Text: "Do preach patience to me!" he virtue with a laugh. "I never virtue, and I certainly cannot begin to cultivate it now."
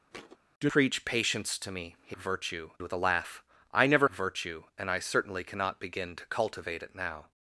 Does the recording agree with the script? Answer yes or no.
yes